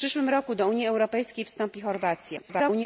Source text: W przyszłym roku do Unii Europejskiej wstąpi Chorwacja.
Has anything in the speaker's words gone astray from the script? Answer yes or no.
yes